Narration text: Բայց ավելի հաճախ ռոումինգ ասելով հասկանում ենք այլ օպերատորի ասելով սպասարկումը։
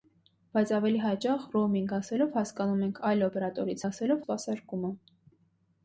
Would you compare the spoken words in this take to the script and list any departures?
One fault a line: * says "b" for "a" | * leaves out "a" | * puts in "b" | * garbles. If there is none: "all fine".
all fine